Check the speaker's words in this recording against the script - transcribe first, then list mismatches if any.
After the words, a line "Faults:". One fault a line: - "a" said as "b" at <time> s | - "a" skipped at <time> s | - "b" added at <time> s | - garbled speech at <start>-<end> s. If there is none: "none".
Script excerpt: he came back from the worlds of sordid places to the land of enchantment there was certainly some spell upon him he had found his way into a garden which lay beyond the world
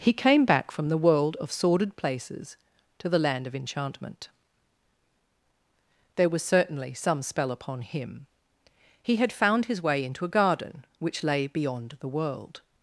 he came back from the world of sordid places to the land of enchantment there was certainly some spell upon him he had found his way into a garden which lay beyond the world
Faults:
- "worlds" said as "world" at 1.0 s